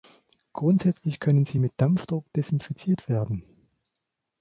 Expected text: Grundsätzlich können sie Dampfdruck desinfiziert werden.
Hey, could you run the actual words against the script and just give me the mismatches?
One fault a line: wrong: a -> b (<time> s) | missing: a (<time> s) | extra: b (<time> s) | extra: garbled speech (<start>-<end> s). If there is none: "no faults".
extra: mit (1.6 s)